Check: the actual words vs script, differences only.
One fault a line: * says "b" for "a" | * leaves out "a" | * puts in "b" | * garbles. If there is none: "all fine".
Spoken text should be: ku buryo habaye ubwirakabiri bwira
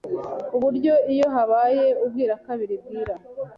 * puts in "iyo"